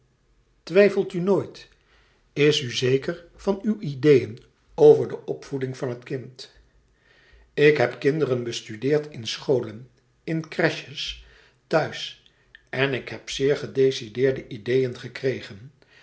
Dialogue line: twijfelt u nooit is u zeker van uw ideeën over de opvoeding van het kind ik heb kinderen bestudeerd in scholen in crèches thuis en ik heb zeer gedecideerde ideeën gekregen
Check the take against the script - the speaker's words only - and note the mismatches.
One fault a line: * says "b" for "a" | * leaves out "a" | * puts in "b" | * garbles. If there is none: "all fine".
all fine